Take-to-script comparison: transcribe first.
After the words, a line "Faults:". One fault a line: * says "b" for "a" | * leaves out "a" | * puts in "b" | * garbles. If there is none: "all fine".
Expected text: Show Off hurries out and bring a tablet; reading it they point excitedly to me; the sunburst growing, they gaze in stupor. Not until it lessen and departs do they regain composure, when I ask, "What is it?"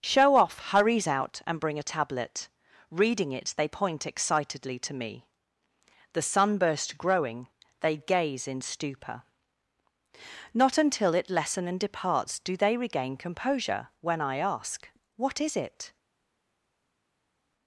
Show Off hurries out and bring a tablet; reading it they point excitedly to me; the sunburst growing, they gaze in stupor. Not until it lessen and departs do they regain composure, when I ask, "What is it?"
Faults:
all fine